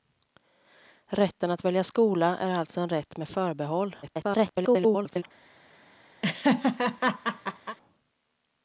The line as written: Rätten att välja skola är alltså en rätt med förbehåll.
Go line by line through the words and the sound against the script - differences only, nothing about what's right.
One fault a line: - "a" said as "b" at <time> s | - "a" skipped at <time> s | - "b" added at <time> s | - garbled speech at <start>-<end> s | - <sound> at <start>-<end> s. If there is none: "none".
- garbled speech at 4.0-5.2 s
- laugh at 6.2-7.8 s